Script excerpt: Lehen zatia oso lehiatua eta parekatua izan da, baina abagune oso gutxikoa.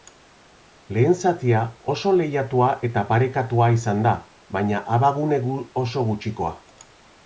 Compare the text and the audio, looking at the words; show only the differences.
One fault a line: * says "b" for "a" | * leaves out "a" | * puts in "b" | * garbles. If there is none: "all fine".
all fine